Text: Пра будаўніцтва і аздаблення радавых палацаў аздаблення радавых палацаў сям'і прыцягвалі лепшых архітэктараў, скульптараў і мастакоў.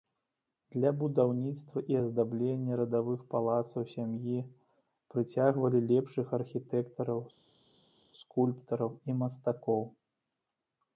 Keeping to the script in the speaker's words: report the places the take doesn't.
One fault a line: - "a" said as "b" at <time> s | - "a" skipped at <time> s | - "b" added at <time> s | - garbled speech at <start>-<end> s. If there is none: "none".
- "Пра" said as "Для" at 0.8 s
- "аздаблення радавых палацаў" skipped at 3.8 s